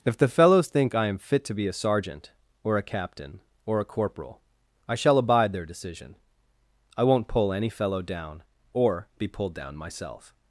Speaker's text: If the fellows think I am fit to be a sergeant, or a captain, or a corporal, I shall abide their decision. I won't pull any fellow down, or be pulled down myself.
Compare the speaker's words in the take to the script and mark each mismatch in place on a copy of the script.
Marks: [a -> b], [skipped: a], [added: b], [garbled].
If the fellows think I am fit to be a sergeant, or a captain, or a corporal, I shall abide their decision. I won't pull any fellow down, or be pulled down myself.